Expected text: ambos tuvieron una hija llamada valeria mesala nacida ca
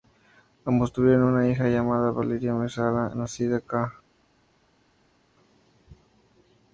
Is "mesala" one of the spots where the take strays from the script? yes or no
no